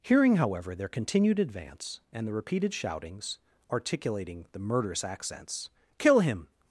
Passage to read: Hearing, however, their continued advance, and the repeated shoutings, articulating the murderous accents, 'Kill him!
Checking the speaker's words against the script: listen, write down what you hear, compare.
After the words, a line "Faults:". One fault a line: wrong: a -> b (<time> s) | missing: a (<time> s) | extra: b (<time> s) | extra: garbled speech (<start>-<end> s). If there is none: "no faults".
Hearing, however, their continued advance, and the repeated shoutings, articulating the murderous accents, 'Kill him!
Faults:
no faults